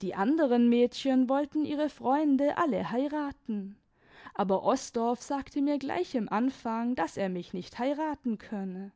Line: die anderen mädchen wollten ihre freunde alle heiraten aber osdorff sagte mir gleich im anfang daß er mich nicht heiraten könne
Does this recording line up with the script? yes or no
yes